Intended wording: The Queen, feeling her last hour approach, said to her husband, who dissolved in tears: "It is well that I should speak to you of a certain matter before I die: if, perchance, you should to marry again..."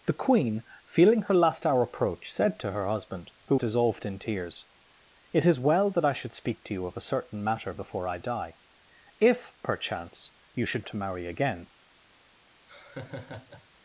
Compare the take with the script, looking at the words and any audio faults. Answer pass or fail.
fail